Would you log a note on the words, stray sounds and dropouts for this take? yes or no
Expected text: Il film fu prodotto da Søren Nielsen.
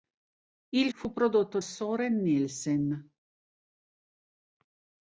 yes